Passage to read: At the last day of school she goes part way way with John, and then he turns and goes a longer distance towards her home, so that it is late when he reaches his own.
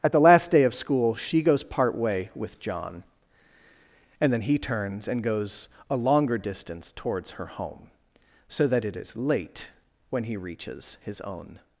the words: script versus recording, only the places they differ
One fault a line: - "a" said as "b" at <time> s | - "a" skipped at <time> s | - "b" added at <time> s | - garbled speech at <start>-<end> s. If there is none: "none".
- "way" skipped at 2.3 s